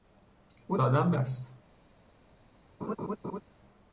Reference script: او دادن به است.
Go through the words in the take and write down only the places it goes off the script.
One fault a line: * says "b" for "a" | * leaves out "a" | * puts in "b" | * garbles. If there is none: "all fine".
all fine